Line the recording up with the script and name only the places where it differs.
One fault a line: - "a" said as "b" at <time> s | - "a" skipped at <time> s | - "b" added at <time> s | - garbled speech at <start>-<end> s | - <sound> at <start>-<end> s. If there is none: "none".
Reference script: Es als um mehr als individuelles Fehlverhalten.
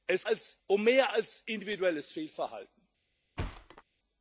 - thud at 3.4-3.8 s